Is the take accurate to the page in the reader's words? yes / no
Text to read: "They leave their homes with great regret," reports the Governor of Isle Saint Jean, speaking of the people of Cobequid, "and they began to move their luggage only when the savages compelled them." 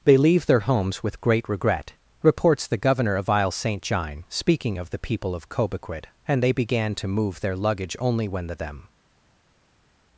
no